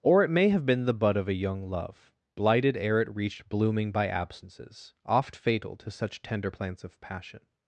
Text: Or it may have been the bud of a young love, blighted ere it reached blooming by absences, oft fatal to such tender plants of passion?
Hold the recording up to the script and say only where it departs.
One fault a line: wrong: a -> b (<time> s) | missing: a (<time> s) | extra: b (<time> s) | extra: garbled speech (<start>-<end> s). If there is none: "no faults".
no faults